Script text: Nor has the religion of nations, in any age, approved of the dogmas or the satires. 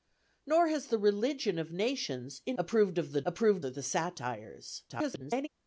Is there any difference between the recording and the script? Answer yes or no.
yes